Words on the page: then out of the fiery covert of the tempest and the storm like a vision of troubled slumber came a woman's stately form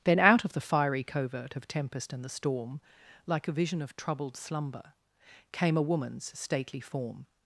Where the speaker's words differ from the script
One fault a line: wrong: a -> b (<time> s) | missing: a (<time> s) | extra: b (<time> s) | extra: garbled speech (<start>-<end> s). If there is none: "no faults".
missing: the (1.7 s)